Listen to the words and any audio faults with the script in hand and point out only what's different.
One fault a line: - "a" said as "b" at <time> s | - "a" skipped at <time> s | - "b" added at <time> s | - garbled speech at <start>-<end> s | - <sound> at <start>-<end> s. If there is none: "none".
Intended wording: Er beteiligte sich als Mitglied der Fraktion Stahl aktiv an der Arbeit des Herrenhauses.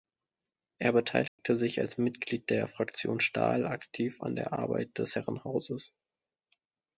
- dropout at 1.3-1.4 s